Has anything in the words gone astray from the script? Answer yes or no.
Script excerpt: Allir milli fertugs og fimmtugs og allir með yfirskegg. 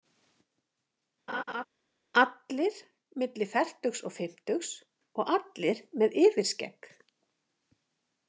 no